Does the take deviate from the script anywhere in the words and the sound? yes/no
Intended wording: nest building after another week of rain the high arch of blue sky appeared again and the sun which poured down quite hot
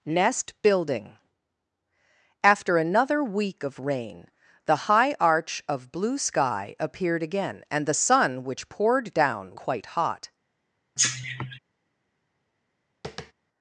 yes